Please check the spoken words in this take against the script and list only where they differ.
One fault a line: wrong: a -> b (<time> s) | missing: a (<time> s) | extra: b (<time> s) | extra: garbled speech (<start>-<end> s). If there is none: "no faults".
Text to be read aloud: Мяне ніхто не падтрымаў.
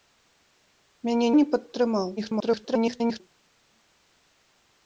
missing: ніхто (1.3 s)
extra: garbled speech (2.2-3.2 s)